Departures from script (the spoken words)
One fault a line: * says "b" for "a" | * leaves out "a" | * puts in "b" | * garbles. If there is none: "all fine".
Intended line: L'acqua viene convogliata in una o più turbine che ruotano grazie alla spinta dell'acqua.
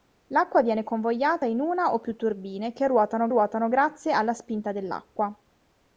* puts in "ruotano"